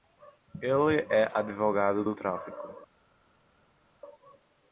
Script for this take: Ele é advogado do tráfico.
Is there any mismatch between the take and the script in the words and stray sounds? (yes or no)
no